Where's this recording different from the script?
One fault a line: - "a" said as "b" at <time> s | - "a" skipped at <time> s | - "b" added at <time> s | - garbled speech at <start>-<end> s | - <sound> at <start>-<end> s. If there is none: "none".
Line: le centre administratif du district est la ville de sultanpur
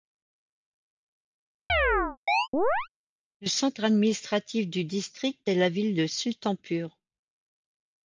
- chirp at 1.7-2.9 s